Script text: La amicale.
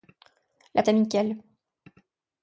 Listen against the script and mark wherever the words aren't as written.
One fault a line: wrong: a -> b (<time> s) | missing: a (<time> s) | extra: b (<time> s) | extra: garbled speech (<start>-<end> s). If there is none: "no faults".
no faults